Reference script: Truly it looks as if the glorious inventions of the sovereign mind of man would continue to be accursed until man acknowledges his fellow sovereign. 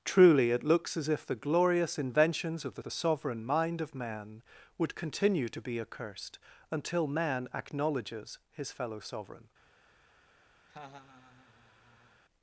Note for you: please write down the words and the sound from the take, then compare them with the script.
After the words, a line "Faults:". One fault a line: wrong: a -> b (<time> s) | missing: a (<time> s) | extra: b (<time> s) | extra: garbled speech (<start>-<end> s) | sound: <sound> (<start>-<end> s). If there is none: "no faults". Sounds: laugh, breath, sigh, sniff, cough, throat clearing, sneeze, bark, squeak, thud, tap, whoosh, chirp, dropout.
Truly it looks as if the glorious inventions of the the sovereign mind of man would continue to be accursed until man acknowledges his fellow sovereign.
Faults:
extra: the (2.8 s)
sound: laugh (10.7-12.2 s)